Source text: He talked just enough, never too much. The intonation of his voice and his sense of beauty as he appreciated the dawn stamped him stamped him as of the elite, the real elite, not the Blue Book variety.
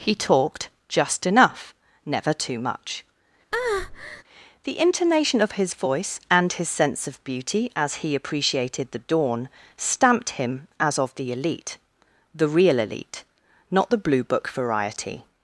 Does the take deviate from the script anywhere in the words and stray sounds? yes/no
yes